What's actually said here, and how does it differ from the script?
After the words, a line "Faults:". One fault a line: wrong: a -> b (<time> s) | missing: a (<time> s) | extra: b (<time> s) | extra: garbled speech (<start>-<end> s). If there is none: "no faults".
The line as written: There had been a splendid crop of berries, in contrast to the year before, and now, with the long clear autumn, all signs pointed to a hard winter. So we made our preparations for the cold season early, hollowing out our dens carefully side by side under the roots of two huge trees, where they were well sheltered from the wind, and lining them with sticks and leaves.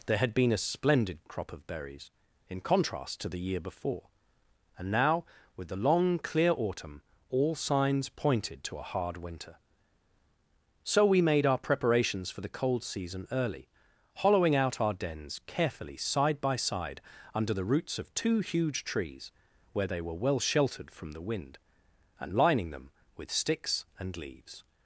There had been a splendid crop of berries, in contrast to the year before, and now, with the long clear autumn, all signs pointed to a hard winter. So we made our preparations for the cold season early, hollowing out our dens carefully side by side under the roots of two huge trees, where they were well sheltered from the wind, and lining them with sticks and leaves.
Faults:
no faults